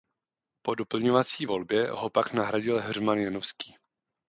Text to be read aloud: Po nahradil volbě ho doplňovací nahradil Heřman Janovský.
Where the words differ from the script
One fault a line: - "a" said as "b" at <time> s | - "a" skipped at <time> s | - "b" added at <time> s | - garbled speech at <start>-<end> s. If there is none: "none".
- "nahradil" said as "doplňovací" at 0.8 s
- "doplňovací" said as "pak" at 2.1 s